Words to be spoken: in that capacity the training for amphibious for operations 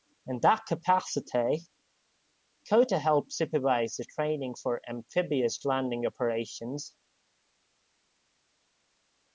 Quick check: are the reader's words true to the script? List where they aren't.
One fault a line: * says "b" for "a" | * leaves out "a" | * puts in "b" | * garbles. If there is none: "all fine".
* puts in "cota helped supervise"
* says "landing" for "for"